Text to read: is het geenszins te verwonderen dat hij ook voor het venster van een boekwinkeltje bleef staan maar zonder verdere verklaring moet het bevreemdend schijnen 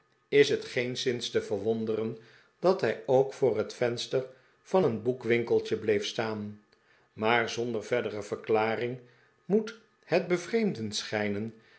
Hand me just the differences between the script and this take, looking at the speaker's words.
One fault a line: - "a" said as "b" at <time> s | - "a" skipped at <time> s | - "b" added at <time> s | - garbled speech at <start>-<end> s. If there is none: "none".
none